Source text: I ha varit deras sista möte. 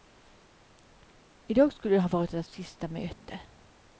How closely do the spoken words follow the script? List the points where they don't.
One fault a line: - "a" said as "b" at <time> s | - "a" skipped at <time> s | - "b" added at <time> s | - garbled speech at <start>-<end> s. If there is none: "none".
- "dag skulle" added at 1.5 s